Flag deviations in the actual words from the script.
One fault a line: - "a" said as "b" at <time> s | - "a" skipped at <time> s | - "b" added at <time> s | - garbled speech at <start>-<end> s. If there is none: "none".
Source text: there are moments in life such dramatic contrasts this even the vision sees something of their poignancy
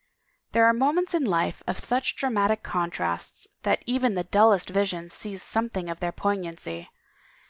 - "of" added at 1.7 s
- "this" said as "that" at 3.6 s
- "dullest" added at 4.2 s